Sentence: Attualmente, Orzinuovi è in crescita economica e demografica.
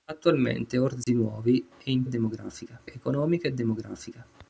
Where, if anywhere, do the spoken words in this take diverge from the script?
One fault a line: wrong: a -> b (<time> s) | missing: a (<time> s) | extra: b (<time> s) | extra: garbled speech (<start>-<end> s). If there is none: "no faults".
wrong: crescita -> demografica (2.1 s)